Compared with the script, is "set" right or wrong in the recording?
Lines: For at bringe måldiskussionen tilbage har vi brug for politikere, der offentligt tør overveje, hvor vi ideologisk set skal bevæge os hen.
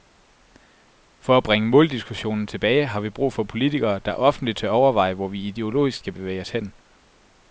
wrong